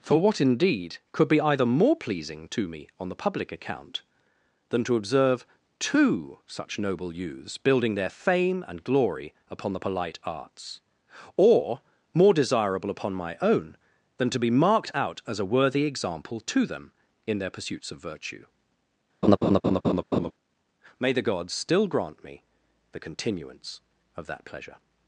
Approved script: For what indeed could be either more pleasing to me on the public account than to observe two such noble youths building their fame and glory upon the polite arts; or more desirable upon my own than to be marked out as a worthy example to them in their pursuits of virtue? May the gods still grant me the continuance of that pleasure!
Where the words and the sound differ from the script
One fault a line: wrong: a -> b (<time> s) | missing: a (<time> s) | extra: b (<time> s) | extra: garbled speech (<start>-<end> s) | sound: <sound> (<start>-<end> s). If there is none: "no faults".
sound: laugh (19.2-20.3 s)